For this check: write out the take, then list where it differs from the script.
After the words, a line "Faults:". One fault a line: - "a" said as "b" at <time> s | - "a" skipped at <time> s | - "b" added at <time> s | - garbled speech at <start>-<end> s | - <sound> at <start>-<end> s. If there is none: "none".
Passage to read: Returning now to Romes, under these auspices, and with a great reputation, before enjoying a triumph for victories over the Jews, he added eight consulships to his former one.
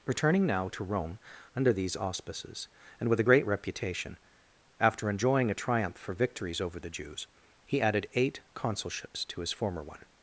Returning now to Rome, under these auspices, and with a great reputation, after enjoying a triumph for victories over the Jews, he added eight consulships to his former one.
Faults:
- "Romes" said as "Rome" at 0.8 s
- "before" said as "after" at 4.8 s